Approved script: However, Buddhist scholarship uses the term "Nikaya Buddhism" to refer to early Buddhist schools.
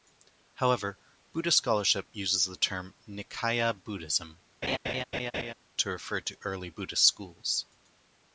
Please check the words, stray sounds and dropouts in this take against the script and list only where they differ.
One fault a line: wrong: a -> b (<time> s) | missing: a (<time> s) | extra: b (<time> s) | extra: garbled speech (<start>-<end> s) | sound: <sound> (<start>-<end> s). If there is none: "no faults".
sound: laugh (4.6-5.5 s)